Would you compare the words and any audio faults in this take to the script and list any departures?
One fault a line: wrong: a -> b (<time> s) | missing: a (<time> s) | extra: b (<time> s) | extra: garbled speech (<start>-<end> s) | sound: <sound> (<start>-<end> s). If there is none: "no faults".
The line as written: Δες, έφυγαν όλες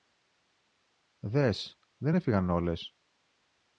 extra: δεν (2.0 s)